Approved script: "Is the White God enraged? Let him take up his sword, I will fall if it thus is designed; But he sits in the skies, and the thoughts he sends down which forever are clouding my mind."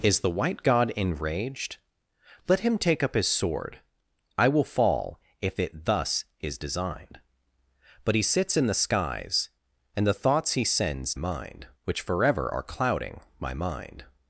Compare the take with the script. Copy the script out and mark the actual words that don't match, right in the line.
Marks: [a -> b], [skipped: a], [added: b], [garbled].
"Is the White God enraged? Let him take up his sword, I will fall if it thus is designed; But he sits in the skies, and the thoughts he sends [down -> mind] which forever are clouding my mind."